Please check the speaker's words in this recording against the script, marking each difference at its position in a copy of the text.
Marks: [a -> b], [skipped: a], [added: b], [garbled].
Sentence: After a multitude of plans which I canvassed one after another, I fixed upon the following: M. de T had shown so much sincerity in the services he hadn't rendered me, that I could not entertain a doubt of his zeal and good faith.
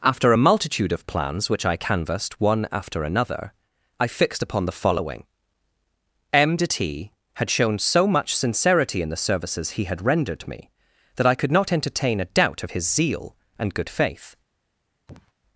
After a multitude of plans which I canvassed one after another, I fixed upon the following: M. de T had shown so much sincerity in the services he [hadn't -> had] rendered me, that I could not entertain a doubt of his zeal and good faith.